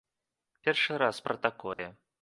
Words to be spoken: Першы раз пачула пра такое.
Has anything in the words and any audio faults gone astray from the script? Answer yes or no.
yes